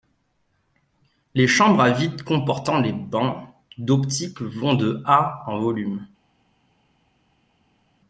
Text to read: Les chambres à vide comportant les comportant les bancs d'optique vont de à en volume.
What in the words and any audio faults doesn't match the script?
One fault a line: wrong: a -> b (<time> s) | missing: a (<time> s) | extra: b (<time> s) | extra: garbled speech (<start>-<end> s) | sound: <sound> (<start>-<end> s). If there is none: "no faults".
missing: comportant les (2.9 s)